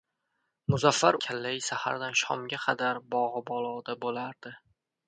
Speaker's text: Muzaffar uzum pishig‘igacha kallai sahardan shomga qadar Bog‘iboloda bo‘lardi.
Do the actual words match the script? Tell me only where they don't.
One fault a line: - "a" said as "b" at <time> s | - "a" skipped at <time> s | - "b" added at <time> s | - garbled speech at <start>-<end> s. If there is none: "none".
- "uzum pishig‘igacha" skipped at 1.2 s